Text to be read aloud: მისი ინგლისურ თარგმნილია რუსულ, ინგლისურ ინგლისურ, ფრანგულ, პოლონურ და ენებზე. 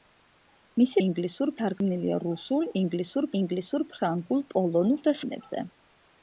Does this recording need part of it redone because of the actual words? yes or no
no